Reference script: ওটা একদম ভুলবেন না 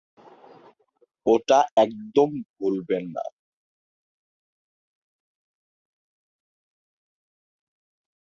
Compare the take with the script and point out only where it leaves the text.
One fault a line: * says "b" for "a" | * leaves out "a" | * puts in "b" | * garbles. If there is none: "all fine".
all fine